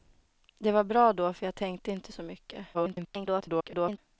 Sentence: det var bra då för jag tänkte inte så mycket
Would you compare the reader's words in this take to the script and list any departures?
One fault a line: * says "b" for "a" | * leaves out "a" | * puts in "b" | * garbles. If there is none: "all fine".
* garbles